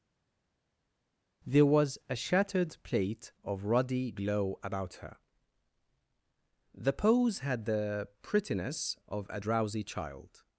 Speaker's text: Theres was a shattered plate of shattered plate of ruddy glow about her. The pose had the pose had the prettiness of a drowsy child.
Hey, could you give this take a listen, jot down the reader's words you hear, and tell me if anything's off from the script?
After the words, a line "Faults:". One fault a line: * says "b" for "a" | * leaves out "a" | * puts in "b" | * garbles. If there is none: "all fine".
There was a shattered plate of ruddy glow about her. The pose had the prettiness of a drowsy child.
Faults:
* says "There" for "Theres"
* leaves out "shattered plate of"
* leaves out "pose had the"